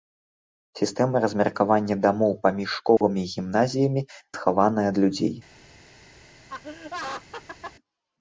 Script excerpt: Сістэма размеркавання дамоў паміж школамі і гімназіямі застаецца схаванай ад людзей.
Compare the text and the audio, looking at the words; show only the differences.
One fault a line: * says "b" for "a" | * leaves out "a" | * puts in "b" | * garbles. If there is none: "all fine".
* leaves out "застаецца"